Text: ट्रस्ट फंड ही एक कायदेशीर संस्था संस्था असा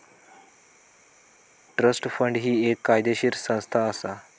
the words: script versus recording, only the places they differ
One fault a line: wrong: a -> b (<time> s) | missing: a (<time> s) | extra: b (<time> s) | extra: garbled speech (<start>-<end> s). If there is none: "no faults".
missing: संस्था (3.9 s)